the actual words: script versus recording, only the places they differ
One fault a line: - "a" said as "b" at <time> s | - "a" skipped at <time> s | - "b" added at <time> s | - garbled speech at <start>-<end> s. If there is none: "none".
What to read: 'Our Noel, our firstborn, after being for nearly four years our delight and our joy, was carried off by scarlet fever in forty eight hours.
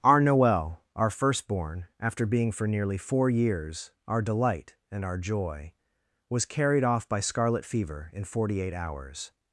none